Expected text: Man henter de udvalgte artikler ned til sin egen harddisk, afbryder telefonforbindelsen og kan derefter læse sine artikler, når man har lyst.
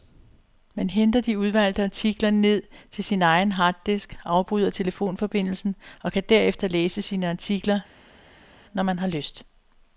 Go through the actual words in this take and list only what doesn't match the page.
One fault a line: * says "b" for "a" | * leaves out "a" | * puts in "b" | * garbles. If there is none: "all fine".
all fine